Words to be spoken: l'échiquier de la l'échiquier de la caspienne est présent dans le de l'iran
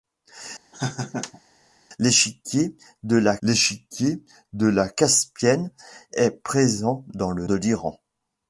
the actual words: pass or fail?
pass